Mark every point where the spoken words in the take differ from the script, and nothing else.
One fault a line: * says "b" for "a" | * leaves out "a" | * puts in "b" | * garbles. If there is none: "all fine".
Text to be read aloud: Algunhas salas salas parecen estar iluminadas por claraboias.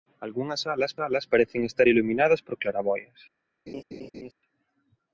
all fine